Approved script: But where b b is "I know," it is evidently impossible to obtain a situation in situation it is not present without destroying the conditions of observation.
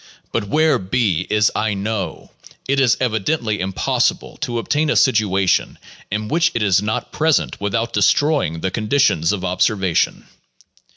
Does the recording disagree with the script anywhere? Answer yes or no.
yes